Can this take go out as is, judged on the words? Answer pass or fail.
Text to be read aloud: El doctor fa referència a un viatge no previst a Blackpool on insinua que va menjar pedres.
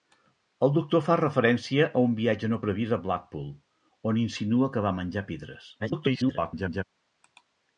fail